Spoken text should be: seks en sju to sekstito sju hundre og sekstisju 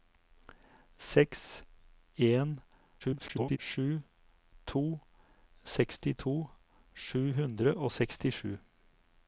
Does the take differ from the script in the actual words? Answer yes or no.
yes